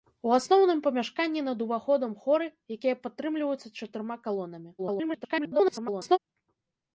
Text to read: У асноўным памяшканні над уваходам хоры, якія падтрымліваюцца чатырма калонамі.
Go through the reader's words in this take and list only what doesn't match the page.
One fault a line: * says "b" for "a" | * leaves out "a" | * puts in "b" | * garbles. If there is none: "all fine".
* garbles